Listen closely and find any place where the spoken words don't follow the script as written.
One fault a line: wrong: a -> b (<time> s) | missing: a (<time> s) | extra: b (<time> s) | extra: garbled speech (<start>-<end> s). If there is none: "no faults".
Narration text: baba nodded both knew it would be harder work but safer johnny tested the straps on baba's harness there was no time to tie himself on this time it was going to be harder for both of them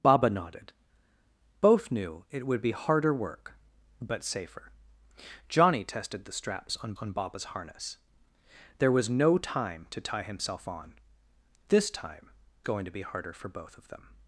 extra: on (6.9 s)
missing: it was (12.3 s)